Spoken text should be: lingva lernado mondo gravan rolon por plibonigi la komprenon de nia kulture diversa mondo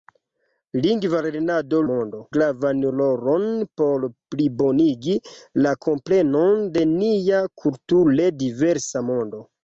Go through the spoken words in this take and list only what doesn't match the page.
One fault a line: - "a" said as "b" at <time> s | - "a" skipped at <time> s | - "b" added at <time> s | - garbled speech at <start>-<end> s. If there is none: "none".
none